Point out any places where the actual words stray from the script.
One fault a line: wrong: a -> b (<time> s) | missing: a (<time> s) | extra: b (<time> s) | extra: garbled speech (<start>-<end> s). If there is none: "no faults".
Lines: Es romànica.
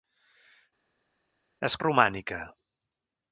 no faults